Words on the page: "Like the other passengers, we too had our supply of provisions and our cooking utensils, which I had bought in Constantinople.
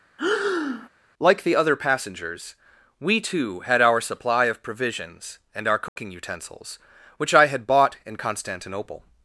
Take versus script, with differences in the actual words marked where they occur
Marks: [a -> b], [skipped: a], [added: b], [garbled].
"Like the other passengers, we too had our supply of provisions and our cooking utensils, which I had bought in Constantinople.